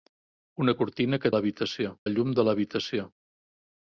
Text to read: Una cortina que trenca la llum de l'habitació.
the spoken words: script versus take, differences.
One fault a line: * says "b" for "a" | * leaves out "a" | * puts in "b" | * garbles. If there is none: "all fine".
* says "l'habitació" for "trenca"